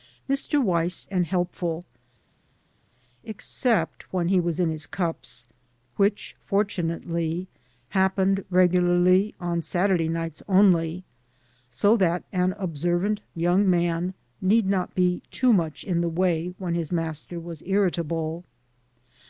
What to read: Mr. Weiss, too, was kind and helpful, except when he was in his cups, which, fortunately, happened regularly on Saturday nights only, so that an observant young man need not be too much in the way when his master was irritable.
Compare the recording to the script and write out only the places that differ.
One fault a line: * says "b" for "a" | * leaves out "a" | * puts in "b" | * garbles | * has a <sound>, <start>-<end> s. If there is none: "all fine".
* leaves out "too was kind"